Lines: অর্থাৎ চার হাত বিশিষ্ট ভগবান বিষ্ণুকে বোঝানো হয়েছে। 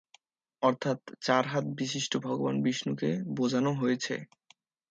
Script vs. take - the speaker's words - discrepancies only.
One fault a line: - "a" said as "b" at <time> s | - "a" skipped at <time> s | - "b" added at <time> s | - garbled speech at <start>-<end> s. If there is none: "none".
none